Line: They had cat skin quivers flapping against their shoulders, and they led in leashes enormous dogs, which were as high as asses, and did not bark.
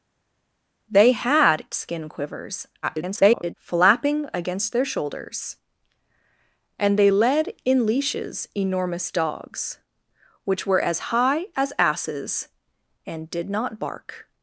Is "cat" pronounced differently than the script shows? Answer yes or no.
yes